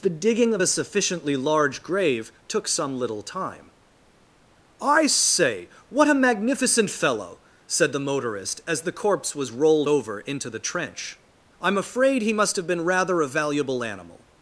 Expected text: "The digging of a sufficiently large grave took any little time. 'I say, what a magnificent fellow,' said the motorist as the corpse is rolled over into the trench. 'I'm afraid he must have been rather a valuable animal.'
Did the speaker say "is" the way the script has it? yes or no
no